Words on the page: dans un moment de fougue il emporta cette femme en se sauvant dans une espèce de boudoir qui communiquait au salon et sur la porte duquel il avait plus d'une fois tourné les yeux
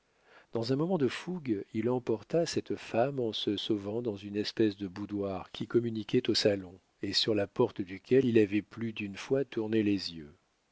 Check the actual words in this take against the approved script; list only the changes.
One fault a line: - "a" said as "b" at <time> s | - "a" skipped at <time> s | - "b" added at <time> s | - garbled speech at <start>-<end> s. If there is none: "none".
none